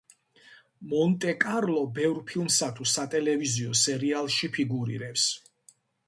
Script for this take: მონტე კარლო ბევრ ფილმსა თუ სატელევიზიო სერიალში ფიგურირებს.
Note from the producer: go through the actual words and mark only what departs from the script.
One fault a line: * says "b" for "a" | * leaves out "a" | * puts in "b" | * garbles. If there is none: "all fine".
all fine